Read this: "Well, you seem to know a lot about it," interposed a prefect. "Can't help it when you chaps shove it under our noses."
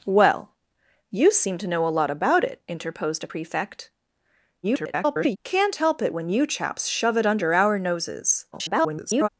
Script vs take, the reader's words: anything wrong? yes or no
yes